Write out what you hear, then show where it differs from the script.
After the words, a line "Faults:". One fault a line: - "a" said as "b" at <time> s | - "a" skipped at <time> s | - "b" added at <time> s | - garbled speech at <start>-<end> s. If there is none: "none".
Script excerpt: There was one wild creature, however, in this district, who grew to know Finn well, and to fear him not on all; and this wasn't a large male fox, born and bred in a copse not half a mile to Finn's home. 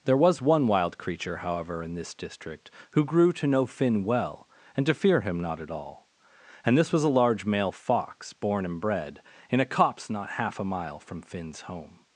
There was one wild creature, however, in this district, who grew to know Finn well, and to fear him not at all; and this was a large male fox, born and bred in a copse not half a mile from Finn's home.
Faults:
- "on" said as "at" at 5.6 s
- "wasn't" said as "was" at 6.9 s
- "to" said as "from" at 11.0 s